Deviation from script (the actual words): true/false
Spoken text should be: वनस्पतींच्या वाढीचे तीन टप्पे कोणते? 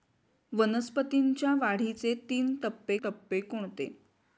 true